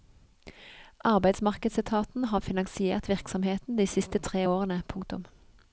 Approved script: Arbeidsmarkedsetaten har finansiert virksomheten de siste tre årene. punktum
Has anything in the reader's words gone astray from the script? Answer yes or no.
no